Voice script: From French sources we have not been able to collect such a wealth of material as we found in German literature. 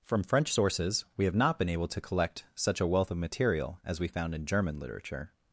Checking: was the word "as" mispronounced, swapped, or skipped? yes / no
no